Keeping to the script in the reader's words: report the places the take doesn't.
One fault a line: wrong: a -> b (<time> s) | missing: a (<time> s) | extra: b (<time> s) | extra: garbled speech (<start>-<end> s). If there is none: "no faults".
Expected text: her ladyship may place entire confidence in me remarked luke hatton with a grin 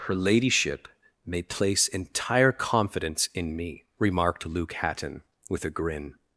no faults